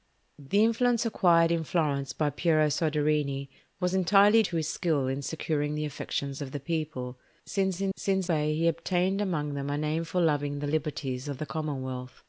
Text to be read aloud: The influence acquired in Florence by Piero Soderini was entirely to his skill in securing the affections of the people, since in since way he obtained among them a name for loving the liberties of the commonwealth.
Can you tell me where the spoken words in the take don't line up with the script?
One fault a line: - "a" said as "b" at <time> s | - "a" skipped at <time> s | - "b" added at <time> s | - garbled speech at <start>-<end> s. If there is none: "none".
none